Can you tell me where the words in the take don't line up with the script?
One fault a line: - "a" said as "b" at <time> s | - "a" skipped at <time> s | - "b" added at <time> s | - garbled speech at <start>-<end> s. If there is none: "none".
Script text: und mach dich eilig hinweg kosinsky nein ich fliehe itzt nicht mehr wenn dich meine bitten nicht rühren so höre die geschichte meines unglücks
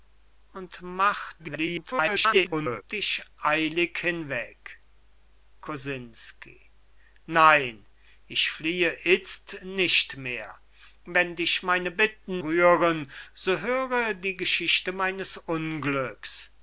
- garbled speech at 1.4-2.8 s
- "nicht" skipped at 12.4 s